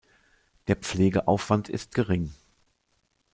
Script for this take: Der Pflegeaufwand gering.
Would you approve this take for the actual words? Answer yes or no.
no